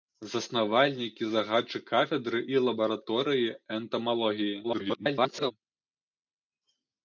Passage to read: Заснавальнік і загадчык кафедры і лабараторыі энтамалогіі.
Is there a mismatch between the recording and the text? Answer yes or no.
yes